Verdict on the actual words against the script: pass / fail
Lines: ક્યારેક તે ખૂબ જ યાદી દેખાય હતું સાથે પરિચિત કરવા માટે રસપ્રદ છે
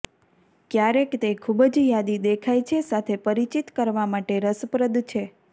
fail